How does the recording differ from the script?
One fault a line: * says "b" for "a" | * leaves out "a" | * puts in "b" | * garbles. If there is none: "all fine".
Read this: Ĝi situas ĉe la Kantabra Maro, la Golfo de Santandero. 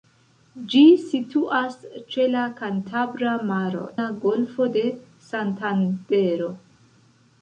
all fine